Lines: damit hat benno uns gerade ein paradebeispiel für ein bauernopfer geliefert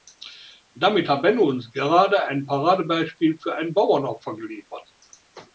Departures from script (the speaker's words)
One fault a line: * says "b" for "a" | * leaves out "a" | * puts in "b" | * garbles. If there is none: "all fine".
all fine